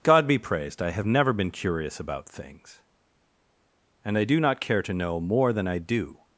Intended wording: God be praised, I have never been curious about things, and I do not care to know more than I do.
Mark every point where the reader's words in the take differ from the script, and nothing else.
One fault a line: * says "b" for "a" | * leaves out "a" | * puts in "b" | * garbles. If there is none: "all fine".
all fine